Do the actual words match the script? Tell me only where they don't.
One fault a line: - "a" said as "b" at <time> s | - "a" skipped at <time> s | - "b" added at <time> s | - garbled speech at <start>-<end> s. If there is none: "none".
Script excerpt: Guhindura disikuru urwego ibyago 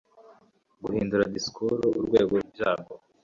none